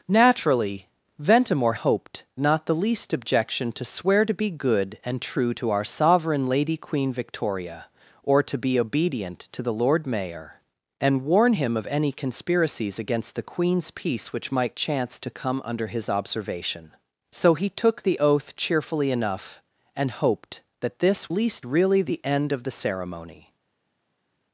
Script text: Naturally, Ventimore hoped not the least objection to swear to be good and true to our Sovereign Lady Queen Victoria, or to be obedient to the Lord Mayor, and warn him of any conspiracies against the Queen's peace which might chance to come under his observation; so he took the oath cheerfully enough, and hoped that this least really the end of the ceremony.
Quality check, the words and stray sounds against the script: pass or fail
pass